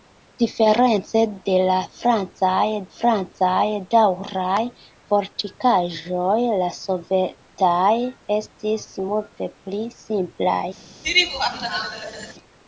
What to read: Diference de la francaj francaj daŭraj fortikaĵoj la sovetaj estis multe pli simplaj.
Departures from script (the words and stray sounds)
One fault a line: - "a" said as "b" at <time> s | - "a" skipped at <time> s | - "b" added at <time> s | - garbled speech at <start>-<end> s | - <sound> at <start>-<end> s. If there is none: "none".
- laugh at 11.0-12.3 s